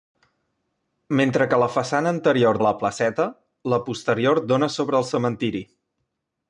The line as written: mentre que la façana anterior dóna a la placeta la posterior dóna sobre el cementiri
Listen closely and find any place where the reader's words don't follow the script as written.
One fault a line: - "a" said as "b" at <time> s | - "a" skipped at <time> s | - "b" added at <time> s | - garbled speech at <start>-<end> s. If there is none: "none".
- "dóna" skipped at 2.6 s